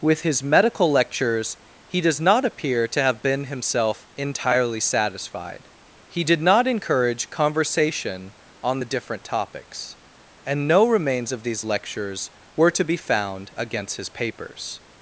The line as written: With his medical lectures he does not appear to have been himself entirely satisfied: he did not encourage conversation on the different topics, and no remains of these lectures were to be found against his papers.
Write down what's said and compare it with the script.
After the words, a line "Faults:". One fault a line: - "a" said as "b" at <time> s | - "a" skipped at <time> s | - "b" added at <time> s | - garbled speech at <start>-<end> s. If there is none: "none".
With his medical lectures he does not appear to have been himself entirely satisfied: he did not encourage conversation on the different topics, and no remains of these lectures were to be found against his papers.
Faults:
none